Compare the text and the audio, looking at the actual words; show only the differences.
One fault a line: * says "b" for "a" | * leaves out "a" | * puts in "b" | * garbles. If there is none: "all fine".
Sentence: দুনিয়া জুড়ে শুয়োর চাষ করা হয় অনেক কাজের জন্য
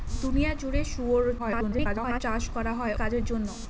* garbles
* leaves out "অনেক"